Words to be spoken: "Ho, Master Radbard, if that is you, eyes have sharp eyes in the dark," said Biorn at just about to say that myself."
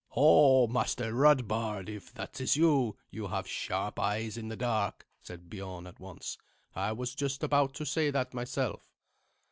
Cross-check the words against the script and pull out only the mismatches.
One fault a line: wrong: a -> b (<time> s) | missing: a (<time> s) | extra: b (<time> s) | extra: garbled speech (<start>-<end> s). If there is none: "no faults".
wrong: eyes -> you (3.1 s)
extra: once I was (6.0 s)